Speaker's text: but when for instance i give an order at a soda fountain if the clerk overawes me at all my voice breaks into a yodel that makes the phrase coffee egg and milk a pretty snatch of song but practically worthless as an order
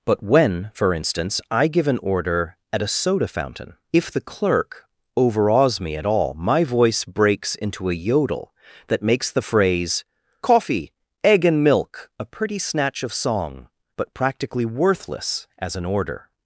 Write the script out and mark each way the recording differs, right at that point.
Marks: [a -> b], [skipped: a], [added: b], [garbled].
but when for instance i give an order at a soda fountain if the clerk overawes me at all my voice breaks into a yodel that makes the phrase coffee egg and milk a pretty snatch of song but practically worthless as an order